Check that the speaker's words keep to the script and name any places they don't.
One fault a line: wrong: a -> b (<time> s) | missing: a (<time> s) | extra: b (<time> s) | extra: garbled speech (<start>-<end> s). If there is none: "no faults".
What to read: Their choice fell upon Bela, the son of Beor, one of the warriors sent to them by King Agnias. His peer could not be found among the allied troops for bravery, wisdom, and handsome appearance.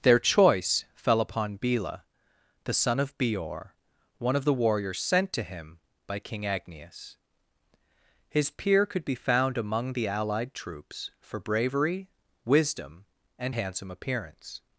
wrong: them -> him (5.4 s)
missing: not (9.0 s)